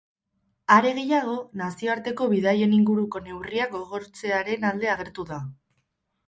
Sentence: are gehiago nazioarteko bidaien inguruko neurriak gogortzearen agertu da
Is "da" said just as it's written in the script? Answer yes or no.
yes